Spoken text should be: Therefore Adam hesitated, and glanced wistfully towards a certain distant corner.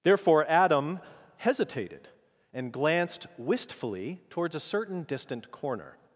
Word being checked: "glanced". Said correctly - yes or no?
yes